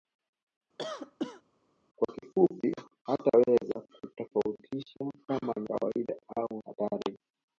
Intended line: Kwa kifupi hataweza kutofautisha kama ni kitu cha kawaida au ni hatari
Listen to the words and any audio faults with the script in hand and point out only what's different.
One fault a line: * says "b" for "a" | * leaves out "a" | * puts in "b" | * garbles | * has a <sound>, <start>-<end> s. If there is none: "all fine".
* has a cough, 0.8-1.4 s
* leaves out "ni kitu cha"
* leaves out "ni"